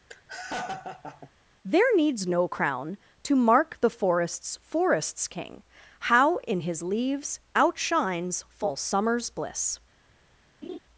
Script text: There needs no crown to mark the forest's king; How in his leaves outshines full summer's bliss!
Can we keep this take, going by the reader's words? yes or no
no